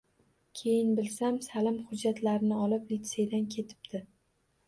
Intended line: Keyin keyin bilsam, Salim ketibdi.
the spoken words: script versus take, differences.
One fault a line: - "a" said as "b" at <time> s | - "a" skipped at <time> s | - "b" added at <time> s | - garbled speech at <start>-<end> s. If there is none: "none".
- "keyin" skipped at 0.9 s
- "hujjatlarini olib litseydan" added at 1.9 s